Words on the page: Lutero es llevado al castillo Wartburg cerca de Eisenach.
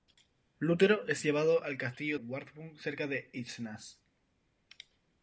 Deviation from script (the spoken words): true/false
false